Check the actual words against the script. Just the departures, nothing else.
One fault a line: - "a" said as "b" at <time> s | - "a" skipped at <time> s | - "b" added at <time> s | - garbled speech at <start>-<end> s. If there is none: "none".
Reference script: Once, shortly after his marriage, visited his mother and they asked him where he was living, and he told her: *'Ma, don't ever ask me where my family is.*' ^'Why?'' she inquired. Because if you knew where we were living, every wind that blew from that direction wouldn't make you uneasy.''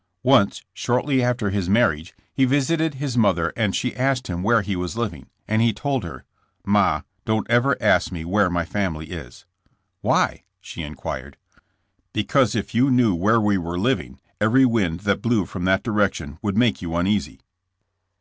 - "he" added at 2.3 s
- "they" said as "she" at 3.8 s
- "wouldn't" said as "would" at 16.4 s